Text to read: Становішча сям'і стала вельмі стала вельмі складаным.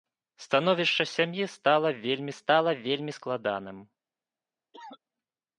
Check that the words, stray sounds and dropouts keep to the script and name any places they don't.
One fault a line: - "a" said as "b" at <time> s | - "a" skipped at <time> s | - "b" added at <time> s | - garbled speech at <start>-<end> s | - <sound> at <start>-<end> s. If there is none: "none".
- cough at 4.7-5.0 s